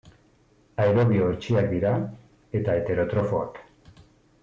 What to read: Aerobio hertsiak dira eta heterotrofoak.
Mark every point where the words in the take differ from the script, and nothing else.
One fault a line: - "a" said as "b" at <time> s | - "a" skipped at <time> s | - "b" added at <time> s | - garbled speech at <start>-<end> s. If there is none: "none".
none